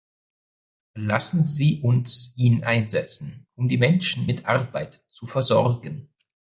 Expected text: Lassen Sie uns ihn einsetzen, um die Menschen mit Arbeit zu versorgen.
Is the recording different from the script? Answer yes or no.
no